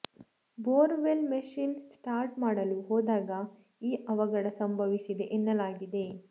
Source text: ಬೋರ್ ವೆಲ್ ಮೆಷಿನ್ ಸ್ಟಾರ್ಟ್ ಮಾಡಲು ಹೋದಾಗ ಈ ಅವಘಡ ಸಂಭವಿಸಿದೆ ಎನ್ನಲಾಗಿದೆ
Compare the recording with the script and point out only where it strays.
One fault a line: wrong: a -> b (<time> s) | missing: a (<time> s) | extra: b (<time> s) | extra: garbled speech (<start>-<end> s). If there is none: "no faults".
no faults